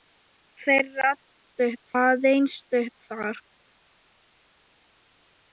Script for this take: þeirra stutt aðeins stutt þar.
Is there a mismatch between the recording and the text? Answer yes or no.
no